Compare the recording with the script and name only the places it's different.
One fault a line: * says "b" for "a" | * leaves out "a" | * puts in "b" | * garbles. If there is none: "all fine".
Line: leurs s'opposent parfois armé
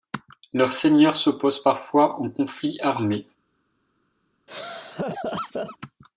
* puts in "seigneurs"
* puts in "en conflit"